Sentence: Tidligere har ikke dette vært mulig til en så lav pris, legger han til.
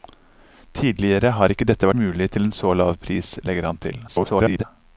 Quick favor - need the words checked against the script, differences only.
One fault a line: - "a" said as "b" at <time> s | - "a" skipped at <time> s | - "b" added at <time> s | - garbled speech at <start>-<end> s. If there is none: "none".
- "vært" skipped at 1.9 s
- garbled speech at 4.1-4.6 s